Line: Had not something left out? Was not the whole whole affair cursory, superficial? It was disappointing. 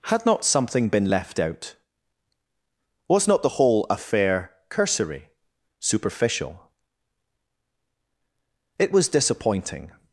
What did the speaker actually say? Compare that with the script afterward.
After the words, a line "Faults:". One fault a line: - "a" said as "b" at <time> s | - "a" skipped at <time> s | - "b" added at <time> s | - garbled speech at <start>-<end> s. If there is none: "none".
Had not something been left out? Was not the whole affair cursory, superficial? It was disappointing.
Faults:
- "been" added at 0.9 s
- "whole" skipped at 3.8 s